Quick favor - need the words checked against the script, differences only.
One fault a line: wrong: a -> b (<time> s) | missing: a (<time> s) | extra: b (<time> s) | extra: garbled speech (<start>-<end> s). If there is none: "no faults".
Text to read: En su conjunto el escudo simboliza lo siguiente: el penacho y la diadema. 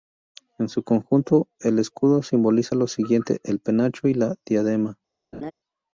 no faults